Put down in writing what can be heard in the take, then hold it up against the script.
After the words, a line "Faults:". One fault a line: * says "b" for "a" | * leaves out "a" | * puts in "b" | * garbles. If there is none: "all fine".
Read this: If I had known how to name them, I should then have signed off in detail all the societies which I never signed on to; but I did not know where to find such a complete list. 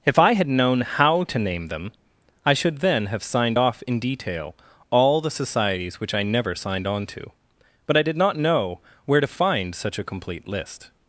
If I had known how to name them, I should then have signed off in detail all the societies which I never signed on to; but I did not know where to find such a complete list.
Faults:
all fine